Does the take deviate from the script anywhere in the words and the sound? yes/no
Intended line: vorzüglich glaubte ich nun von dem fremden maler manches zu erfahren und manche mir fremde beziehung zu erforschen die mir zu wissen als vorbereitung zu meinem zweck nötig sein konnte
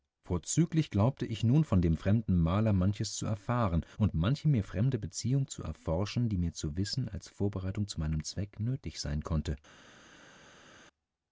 no